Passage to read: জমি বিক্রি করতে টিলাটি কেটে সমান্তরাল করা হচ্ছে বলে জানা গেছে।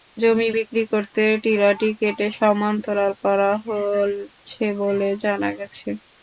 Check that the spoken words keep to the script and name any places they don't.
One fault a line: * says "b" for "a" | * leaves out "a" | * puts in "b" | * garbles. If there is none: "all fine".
all fine